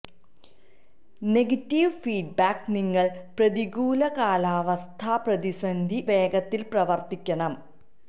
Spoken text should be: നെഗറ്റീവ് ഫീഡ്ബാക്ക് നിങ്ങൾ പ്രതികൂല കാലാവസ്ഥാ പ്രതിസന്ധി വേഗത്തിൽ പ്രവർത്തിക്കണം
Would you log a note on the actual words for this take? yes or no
no